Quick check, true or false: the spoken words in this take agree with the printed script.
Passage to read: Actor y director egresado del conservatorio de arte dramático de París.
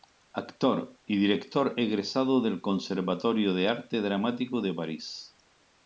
true